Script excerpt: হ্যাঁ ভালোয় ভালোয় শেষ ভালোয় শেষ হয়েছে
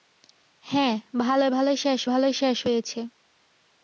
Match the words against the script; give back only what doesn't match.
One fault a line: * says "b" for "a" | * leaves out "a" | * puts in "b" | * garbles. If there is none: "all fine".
all fine